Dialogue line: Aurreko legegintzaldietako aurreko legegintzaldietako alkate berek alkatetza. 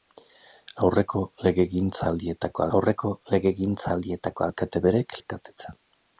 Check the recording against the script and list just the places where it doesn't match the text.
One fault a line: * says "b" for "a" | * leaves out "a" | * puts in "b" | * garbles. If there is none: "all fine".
all fine